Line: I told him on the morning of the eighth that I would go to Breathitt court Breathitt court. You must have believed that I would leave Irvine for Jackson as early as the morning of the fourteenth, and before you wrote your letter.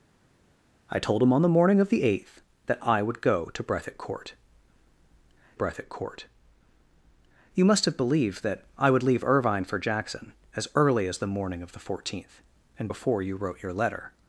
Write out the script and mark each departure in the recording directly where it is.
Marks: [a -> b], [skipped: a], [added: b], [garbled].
I told him on the morning of the eighth that I would go to Breathitt court Breathitt court. You must have believed that I would leave Irvine for Jackson as early as the morning of the fourteenth, and before you wrote your letter.